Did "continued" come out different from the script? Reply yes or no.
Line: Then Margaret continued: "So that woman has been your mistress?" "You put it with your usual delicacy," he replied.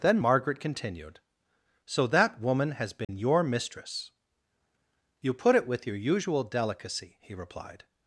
no